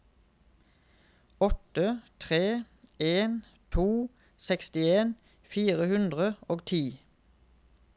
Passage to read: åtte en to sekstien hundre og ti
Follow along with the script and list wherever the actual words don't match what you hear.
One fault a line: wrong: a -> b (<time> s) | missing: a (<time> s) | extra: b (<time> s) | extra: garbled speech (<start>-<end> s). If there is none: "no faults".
extra: tre (2.2 s)
extra: fire (5.5 s)